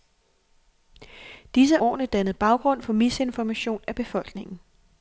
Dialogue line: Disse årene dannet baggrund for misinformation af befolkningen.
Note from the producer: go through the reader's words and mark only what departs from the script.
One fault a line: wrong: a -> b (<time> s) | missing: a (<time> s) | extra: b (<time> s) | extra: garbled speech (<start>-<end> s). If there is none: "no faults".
no faults